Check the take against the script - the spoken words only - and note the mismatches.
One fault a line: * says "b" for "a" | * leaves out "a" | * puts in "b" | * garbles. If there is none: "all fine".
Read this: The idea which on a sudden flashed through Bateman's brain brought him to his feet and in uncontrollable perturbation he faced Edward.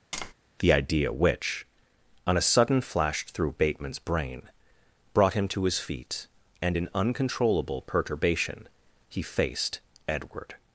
all fine